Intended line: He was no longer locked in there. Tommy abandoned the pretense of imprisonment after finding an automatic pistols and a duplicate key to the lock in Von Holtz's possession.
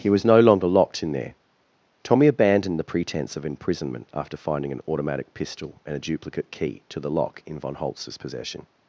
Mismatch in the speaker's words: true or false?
true